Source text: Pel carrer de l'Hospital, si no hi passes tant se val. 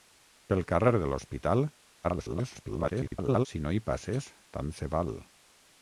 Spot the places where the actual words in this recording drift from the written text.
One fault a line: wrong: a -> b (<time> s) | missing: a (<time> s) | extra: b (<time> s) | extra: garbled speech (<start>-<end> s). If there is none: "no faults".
extra: garbled speech (2.0-3.5 s)